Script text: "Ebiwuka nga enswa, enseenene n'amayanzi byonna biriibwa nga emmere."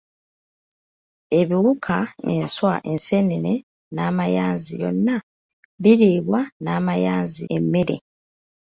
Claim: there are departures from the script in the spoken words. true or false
true